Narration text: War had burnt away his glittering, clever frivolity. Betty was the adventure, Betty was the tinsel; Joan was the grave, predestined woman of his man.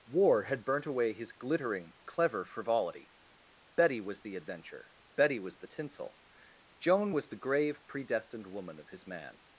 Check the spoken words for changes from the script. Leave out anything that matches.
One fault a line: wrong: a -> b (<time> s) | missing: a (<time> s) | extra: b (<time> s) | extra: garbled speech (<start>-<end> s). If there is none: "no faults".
no faults